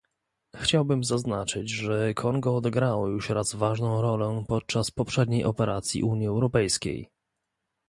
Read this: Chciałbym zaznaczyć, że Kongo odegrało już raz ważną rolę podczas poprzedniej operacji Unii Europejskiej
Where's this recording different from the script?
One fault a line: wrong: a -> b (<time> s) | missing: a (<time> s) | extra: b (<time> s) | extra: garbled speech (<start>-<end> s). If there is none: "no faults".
no faults